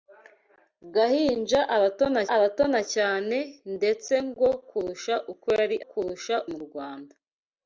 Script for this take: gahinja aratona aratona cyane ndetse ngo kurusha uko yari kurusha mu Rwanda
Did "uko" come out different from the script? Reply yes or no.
no